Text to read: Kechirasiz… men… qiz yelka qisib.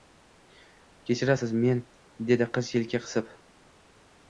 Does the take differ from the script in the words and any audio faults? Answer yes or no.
yes